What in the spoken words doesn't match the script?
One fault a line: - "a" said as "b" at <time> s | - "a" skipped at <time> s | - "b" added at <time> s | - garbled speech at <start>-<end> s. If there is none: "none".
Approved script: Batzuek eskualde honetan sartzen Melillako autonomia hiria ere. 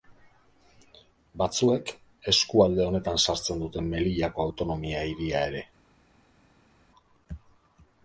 - "dute" added at 3.6 s